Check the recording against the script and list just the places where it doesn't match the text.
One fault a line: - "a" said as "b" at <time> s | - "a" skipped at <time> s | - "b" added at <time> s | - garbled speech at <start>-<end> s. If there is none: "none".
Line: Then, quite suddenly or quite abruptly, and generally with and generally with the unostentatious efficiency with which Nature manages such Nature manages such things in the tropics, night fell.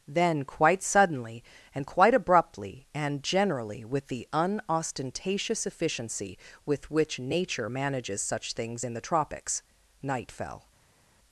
- "or" said as "and" at 1.7 s
- "and generally with" skipped at 4.1 s
- "Nature manages such" skipped at 8.5 s